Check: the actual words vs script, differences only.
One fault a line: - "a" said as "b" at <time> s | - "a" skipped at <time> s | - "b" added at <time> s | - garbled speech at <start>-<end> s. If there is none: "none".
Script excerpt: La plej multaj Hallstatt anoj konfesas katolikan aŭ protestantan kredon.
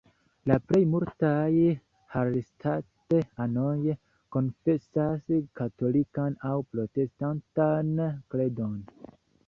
none